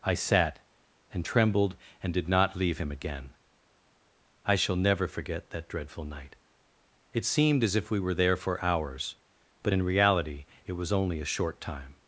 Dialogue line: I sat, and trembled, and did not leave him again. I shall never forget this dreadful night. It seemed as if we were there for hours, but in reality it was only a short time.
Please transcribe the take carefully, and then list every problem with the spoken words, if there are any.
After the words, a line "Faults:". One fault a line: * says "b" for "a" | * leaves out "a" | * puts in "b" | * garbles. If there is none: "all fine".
I sat, and trembled, and did not leave him again. I shall never forget that dreadful night. It seemed as if we were there for hours, but in reality it was only a short time.
Faults:
* says "that" for "this"